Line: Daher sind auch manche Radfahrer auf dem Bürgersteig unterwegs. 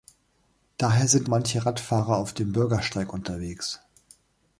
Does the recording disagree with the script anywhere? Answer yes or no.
yes